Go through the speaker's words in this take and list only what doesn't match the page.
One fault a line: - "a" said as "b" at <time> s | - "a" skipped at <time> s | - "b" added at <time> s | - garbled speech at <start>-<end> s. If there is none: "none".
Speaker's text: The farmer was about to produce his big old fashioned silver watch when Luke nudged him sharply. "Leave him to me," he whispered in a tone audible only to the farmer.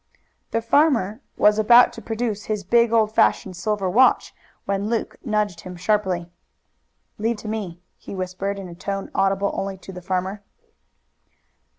- "him" skipped at 7.4 s